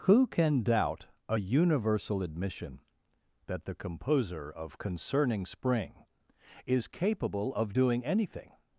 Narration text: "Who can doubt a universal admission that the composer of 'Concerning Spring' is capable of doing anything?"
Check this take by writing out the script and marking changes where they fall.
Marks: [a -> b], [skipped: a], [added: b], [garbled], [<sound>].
"Who can doubt a universal admission that the composer of 'Concerning Spring' is capable of doing anything?"